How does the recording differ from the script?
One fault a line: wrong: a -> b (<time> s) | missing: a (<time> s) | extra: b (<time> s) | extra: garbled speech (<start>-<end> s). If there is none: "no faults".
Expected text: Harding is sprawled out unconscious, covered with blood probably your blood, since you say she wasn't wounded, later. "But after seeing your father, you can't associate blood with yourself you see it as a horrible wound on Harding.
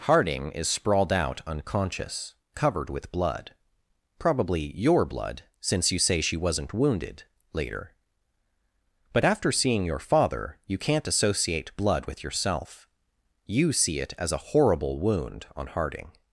no faults